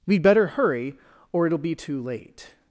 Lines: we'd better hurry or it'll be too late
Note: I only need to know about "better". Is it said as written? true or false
true